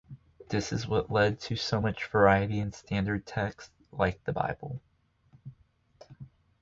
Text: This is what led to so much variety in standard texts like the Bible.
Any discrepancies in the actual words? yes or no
no